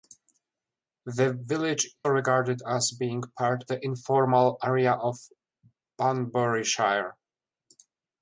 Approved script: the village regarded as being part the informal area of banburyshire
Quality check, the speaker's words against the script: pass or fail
pass